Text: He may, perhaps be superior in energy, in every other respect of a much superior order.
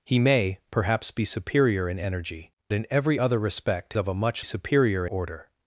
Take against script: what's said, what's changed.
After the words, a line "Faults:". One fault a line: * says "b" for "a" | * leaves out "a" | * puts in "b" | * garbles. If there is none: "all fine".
He may, perhaps be superior in energy, in every other respect of a much superior order.
Faults:
all fine